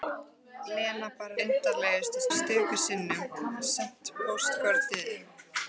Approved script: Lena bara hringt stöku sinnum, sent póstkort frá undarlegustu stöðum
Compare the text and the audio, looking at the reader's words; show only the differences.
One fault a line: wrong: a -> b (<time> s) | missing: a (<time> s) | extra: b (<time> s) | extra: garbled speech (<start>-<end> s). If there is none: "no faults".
wrong: hringt -> undarlegustu (1.5 s)
missing: frá undarlegustu (4.8 s)